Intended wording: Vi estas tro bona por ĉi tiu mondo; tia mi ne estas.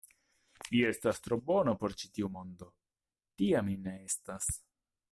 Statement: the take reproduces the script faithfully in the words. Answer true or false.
true